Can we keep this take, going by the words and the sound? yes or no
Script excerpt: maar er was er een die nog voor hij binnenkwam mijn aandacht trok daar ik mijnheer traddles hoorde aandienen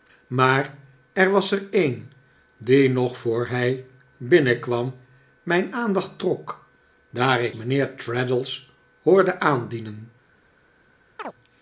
no